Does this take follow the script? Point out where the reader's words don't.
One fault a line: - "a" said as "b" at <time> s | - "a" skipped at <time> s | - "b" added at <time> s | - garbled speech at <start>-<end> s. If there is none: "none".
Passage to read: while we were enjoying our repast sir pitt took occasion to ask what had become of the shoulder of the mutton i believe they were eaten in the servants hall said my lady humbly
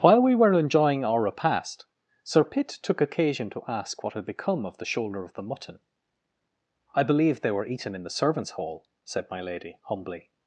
none